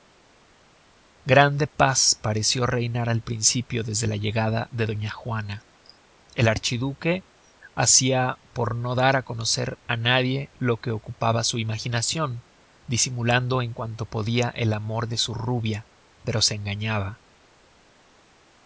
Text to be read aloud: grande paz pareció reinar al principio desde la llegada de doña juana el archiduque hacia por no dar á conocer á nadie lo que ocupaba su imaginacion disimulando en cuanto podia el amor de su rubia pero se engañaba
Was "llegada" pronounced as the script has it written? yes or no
yes